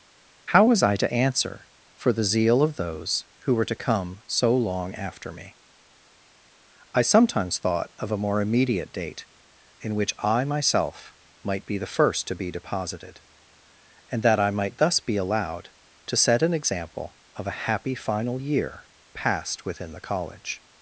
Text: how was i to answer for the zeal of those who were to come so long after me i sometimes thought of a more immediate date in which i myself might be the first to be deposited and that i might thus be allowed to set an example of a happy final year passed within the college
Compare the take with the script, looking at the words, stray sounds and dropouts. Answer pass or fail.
pass